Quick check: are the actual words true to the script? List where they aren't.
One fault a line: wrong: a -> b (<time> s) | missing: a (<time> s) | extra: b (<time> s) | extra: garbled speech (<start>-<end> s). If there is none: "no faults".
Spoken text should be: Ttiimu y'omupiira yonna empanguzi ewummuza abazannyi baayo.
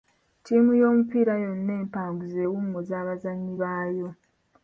no faults